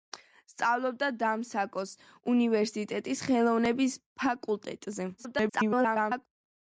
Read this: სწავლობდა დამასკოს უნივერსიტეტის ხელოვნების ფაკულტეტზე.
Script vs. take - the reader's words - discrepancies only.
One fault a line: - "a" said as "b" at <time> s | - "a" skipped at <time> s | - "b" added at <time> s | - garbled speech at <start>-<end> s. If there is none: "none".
- garbled speech at 5.2-6.3 s